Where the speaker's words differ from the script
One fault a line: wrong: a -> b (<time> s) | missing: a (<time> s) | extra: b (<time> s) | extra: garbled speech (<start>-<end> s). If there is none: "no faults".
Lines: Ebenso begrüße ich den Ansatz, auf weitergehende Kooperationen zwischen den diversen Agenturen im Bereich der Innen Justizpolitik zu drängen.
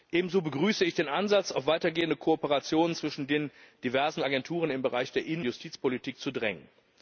no faults